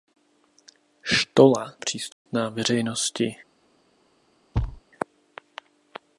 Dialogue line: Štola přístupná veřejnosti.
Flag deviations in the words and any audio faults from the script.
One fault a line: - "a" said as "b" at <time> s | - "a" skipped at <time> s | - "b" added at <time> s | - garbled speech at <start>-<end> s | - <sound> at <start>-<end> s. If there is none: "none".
- dropout at 2.1-2.3 s
- thud at 4.5-4.8 s